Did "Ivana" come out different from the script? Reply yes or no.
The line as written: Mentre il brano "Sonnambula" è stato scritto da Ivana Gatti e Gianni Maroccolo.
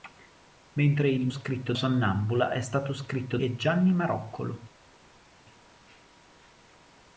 yes